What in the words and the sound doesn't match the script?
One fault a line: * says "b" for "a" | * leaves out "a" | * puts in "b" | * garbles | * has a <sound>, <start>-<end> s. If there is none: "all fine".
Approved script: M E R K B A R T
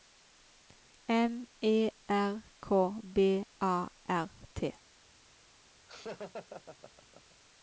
* has a laugh, 5.9-7.4 s